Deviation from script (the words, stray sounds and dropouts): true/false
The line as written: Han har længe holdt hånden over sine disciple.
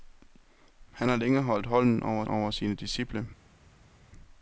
true